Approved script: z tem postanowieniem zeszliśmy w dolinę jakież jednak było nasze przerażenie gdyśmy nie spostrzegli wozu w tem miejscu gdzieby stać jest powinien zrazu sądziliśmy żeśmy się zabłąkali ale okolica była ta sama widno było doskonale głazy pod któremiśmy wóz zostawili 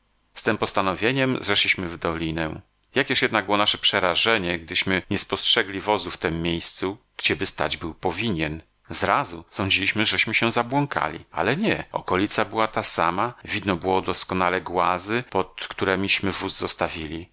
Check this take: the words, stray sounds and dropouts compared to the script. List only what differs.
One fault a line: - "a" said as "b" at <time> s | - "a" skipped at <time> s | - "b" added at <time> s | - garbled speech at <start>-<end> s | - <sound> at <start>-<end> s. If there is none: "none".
- "jest" said as "był" at 7.8 s
- "nie" added at 11.6 s